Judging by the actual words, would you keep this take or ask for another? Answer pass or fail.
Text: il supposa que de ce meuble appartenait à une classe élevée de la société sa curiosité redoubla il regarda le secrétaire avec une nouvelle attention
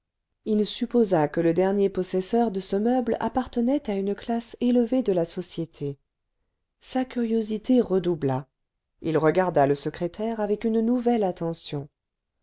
fail